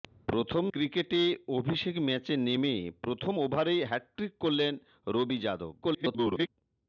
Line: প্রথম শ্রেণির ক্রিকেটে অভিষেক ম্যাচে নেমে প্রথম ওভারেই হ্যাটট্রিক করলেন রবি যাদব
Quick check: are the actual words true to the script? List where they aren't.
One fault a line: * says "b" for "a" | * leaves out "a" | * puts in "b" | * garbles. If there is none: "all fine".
* leaves out "শ্রেণির"
* garbles